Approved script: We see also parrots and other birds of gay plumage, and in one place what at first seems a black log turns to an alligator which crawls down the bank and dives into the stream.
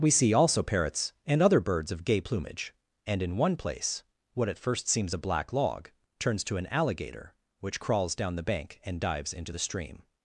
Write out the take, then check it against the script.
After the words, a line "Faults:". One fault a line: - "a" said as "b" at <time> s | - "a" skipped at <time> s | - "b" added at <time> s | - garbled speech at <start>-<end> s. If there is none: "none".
We see also parrots and other birds of gay plumage, and in one place what at first seems a black log turns to an alligator which crawls down the bank and dives into the stream.
Faults:
none